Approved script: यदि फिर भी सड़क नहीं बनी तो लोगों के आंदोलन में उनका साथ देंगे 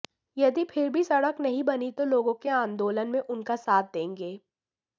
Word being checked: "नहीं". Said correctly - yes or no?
yes